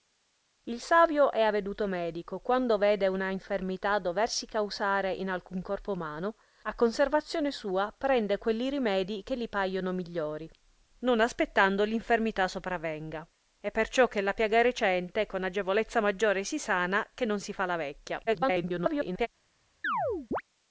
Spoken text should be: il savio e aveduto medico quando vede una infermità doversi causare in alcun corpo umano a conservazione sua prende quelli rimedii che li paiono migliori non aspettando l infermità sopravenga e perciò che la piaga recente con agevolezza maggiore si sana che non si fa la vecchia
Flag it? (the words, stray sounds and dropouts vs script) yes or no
yes